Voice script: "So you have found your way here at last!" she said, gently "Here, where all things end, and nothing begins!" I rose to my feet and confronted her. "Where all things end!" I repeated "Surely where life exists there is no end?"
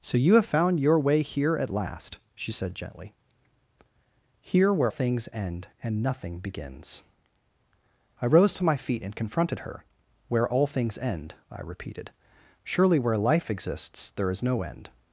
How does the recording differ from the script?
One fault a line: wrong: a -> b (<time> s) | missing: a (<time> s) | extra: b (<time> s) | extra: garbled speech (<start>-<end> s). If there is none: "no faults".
missing: all (4.9 s)